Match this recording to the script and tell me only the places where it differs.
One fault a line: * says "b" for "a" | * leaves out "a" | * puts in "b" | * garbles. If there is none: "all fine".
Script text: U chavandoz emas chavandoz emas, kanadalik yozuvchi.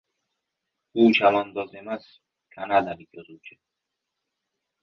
* leaves out "chavandoz emas"